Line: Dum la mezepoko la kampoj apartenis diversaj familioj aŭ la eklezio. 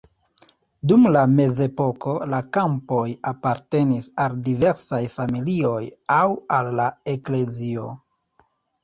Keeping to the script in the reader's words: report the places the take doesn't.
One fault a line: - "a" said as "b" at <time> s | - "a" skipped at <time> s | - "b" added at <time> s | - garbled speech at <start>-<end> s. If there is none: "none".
- "al" added at 4.2 s
- "al" added at 6.6 s